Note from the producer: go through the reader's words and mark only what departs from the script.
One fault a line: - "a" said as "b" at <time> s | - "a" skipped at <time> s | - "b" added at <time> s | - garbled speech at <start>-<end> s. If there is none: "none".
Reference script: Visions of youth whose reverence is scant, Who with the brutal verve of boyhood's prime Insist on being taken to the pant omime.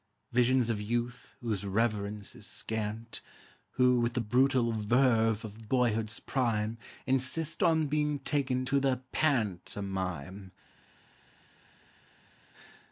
none